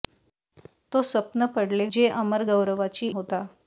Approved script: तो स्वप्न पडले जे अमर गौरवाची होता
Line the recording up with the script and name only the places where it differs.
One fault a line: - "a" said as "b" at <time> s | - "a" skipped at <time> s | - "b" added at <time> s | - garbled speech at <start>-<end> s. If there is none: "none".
none